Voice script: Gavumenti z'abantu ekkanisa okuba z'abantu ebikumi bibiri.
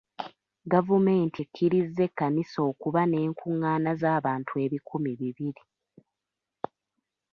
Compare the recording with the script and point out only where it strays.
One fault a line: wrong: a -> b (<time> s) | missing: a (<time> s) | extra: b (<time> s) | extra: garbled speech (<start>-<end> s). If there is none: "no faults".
wrong: z'abantu -> ekkirizza (1.4 s)
extra: n'enkungaana (3.1 s)